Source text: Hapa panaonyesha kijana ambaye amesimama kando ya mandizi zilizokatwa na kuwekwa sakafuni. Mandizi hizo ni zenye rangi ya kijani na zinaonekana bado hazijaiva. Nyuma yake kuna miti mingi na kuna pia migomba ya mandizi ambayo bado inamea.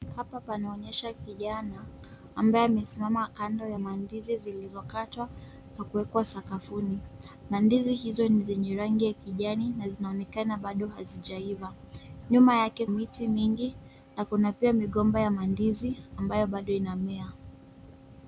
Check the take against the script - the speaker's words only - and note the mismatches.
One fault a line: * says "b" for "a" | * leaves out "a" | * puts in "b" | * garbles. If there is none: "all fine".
* leaves out "kuna"